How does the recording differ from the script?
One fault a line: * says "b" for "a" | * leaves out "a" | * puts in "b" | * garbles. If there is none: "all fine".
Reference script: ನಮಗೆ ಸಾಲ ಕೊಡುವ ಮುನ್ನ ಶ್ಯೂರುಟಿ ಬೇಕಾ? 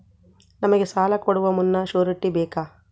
all fine